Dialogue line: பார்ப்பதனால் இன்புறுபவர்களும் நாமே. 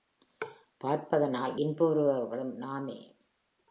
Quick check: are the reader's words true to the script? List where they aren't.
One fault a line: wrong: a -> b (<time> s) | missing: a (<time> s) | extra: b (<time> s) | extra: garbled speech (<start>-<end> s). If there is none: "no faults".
no faults